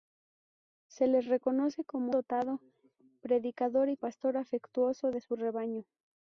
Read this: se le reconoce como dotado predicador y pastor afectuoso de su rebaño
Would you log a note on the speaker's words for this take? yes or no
no